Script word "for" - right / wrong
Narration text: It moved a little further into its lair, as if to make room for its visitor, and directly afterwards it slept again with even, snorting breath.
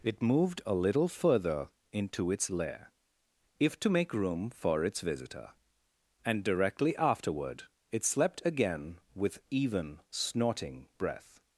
right